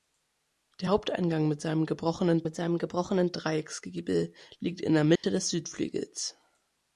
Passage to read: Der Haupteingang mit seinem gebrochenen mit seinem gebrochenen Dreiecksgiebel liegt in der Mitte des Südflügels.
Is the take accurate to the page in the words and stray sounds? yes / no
no